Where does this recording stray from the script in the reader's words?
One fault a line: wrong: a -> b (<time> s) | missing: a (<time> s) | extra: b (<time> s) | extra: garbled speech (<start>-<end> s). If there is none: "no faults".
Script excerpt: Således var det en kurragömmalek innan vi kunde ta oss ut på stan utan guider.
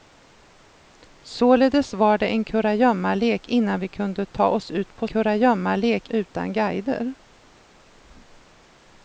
wrong: stan -> kurragömmalek (5.1 s)